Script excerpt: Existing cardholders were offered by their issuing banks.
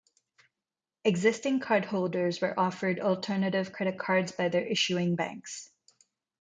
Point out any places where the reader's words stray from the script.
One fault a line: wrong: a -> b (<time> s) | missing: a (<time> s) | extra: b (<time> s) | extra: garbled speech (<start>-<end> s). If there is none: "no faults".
extra: alternative credit cards (3.0 s)